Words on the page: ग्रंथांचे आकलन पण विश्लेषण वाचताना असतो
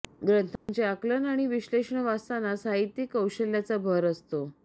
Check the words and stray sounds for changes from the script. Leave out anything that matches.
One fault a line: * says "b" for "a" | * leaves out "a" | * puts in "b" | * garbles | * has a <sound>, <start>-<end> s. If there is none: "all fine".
* has a dropout, 0.6-0.7 s
* says "आणि" for "पण"
* puts in "साहित्यिक कौशल्याचा भर"